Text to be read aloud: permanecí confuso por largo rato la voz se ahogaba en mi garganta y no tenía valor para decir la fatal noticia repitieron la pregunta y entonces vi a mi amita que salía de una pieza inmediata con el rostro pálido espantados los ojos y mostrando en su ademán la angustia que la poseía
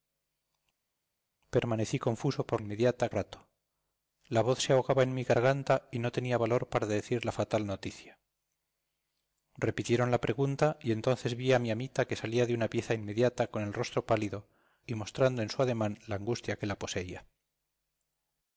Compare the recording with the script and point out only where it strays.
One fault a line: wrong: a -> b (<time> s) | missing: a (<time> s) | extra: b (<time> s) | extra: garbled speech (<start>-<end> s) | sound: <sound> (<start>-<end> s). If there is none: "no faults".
wrong: largo -> inmediata (2.6 s)
missing: espantados los ojos (14.5 s)